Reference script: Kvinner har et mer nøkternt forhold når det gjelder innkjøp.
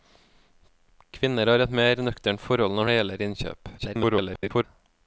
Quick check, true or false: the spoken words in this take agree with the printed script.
false